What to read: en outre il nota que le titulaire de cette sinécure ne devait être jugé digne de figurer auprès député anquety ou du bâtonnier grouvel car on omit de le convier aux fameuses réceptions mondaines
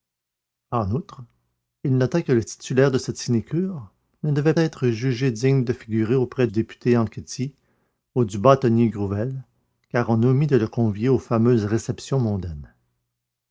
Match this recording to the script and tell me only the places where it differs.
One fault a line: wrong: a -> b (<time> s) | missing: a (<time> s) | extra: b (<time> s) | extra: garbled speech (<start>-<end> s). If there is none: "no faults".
no faults